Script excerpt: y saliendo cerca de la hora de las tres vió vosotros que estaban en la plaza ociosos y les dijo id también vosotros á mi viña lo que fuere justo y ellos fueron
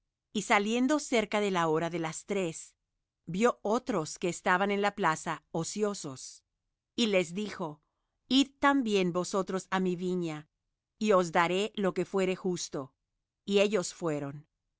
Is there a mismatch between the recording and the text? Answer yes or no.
yes